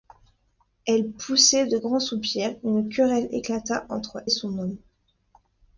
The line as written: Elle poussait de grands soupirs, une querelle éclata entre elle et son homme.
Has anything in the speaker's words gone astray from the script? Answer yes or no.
yes